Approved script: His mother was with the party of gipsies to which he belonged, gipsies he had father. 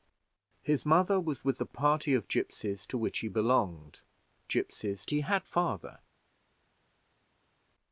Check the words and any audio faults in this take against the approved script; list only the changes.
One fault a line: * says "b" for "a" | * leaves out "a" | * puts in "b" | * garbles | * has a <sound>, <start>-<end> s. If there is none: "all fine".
all fine